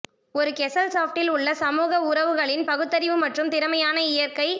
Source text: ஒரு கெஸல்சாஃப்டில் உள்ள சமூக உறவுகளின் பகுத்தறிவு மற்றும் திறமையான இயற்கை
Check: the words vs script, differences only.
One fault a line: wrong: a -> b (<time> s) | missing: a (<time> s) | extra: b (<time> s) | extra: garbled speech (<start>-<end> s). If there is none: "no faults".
no faults